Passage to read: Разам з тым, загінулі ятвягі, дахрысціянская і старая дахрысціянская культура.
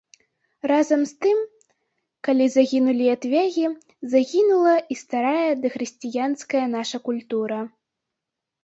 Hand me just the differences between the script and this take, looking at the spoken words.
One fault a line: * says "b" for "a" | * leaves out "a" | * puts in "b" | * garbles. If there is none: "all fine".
* puts in "калі"
* says "загінула" for "дахрысціянская"
* puts in "наша"